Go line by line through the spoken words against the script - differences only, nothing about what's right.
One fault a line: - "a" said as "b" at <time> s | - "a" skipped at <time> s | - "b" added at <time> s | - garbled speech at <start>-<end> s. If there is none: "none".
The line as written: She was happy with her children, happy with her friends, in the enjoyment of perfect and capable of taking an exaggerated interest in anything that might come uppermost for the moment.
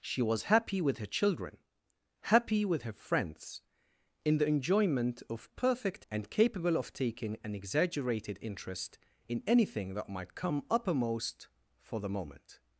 none